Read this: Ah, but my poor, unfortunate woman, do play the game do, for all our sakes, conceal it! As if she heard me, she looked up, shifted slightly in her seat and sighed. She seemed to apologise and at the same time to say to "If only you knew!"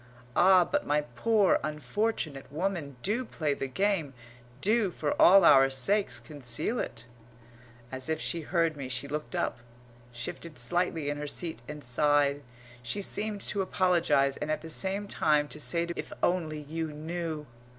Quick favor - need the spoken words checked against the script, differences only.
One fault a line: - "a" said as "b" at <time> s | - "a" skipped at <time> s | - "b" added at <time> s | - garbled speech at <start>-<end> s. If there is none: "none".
none